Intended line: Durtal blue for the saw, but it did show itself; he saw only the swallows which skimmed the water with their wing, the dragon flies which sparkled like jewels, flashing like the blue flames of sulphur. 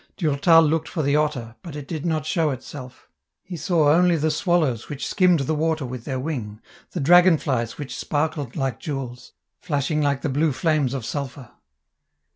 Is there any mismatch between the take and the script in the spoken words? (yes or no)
yes